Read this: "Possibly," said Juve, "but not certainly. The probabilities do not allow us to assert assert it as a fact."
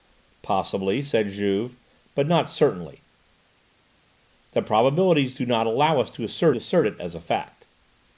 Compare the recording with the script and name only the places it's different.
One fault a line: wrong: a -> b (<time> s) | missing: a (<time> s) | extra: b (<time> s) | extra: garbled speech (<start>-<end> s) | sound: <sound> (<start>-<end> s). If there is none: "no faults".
no faults